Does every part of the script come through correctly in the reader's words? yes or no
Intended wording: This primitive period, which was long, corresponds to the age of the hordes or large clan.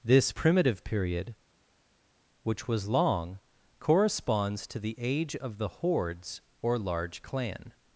yes